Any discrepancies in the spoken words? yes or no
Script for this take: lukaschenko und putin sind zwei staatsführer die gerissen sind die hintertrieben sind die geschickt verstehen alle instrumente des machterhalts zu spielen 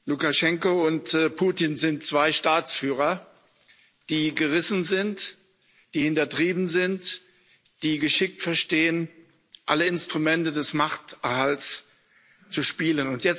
no